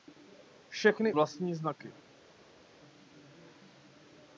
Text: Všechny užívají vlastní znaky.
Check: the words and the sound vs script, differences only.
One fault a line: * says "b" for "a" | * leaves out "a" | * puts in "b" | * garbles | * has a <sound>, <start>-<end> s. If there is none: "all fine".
* leaves out "užívají"